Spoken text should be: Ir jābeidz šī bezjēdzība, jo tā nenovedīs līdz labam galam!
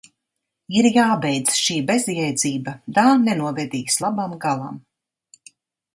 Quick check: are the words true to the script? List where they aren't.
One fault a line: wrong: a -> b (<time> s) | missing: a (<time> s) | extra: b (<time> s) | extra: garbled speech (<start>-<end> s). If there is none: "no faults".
missing: jo (2.7 s)
missing: līdz (4.0 s)